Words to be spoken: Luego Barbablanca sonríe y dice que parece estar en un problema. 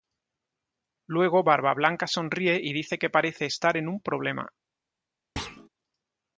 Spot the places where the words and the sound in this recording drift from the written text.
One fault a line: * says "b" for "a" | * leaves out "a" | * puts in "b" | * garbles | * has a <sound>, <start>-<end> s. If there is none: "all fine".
* has a thud, 5.4-5.7 s